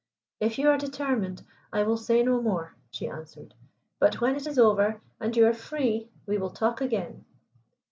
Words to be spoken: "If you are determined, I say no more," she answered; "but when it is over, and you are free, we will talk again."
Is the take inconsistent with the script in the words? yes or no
yes